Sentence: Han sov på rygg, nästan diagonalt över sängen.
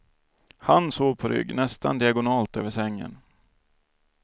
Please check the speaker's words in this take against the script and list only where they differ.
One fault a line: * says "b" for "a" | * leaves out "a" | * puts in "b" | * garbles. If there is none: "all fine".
all fine